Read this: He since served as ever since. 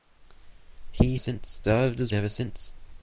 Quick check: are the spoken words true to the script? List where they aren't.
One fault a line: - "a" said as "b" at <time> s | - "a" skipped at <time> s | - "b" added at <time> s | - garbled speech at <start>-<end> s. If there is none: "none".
none